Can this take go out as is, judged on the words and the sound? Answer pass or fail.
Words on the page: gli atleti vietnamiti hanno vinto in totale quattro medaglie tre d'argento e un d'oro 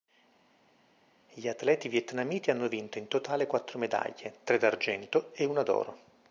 fail